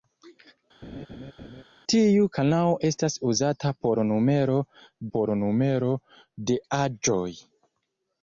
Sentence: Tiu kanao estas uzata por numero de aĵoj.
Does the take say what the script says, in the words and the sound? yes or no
no